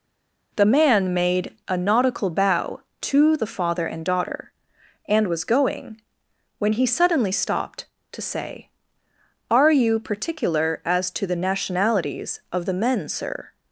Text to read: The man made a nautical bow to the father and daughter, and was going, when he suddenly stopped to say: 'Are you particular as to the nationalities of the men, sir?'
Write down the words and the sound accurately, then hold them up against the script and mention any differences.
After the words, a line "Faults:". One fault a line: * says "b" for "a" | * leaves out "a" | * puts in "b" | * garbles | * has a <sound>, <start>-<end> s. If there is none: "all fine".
The man made a nautical bow to the father and daughter, and was going, when he suddenly stopped to say: 'Are you particular as to the nationalities of the men, sir?'
Faults:
all fine